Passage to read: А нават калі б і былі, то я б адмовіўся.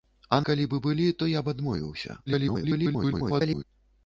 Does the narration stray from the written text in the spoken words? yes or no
yes